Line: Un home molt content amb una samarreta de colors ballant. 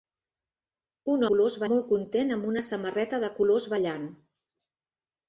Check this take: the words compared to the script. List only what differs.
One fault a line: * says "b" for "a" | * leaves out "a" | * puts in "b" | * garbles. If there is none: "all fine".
* says "colors" for "home"